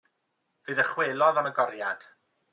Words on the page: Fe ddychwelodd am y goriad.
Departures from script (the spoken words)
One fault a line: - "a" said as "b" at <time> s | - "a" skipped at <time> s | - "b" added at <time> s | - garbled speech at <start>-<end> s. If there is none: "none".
none